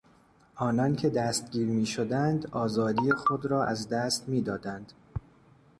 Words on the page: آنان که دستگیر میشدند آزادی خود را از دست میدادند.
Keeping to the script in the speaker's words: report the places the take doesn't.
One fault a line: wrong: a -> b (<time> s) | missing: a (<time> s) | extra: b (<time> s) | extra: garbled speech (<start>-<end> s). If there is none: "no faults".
no faults